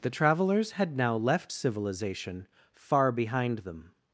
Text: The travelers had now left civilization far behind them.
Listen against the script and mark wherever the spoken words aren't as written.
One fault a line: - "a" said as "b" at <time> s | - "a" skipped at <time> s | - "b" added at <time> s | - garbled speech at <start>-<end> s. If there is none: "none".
none